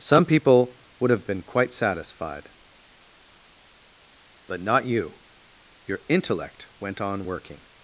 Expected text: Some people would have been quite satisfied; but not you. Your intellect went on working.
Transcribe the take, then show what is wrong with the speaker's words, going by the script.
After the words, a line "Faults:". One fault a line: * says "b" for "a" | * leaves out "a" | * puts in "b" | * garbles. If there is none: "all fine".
Some people would have been quite satisfied; but not you. Your intellect went on working.
Faults:
all fine